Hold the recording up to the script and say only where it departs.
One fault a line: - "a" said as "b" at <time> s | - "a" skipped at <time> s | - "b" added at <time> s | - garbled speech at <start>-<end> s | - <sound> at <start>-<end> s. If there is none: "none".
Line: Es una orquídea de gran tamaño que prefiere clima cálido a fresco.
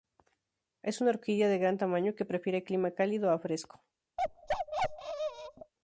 - bark at 4.2-5.7 s